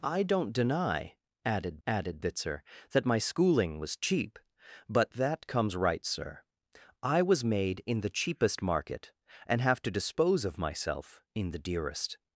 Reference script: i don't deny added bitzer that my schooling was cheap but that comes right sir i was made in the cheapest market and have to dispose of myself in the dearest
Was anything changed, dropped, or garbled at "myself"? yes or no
no